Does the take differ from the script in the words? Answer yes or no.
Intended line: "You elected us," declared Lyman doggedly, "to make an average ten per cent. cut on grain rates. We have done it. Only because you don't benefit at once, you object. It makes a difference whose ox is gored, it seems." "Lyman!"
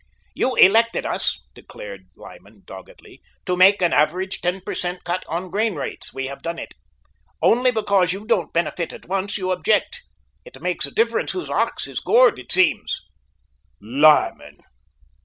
no